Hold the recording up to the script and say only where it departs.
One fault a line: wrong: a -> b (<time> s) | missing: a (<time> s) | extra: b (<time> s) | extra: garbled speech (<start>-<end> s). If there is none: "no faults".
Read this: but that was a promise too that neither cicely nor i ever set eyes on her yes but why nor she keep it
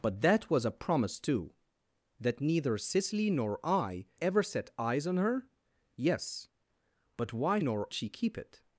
no faults